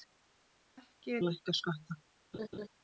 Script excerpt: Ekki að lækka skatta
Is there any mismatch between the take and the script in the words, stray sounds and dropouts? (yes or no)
yes